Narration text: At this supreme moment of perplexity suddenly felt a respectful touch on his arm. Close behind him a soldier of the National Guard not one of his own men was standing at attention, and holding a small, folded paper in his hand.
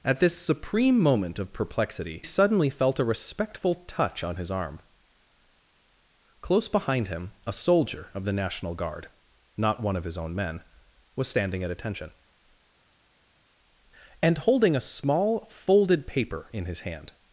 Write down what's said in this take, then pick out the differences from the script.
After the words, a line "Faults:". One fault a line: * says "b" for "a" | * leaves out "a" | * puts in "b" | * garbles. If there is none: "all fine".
At this supreme moment of perplexity suddenly felt a respectful touch on his arm. Close behind him a soldier of the National Guard not one of his own men was standing at attention, and holding a small, folded paper in his hand.
Faults:
all fine